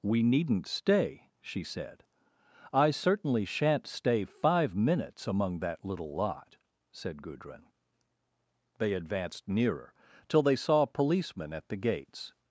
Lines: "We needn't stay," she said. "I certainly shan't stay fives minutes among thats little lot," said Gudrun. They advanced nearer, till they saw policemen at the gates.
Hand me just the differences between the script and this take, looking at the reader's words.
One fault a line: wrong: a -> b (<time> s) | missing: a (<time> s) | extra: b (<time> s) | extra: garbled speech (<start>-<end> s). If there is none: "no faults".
wrong: fives -> five (4.2 s)
wrong: thats -> that (5.6 s)